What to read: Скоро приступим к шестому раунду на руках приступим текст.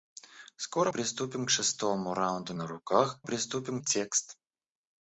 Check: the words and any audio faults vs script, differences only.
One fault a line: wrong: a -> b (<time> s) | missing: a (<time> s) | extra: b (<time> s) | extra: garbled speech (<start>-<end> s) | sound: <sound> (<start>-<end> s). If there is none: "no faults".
no faults